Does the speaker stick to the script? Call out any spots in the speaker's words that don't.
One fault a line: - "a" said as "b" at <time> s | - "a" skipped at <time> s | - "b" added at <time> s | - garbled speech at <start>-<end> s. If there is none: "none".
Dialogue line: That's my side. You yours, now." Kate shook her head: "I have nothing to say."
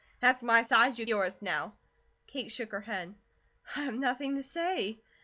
none